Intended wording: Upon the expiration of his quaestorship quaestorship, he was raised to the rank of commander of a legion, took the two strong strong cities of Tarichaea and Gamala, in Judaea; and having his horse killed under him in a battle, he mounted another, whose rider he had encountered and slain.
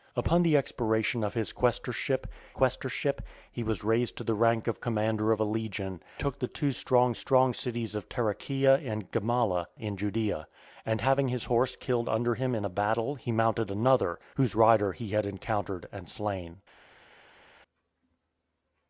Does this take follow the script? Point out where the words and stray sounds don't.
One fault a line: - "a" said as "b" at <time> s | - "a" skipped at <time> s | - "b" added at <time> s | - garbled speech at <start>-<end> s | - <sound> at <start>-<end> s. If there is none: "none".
none